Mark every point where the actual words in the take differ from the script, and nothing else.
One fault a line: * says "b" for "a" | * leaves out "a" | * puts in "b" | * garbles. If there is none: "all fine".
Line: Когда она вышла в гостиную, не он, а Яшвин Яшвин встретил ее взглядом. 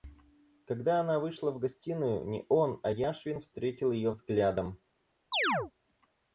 * leaves out "Яшвин"